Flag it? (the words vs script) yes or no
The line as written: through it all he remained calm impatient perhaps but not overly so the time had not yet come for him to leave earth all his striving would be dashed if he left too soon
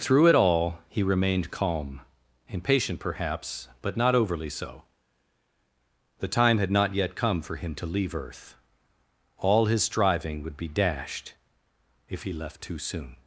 no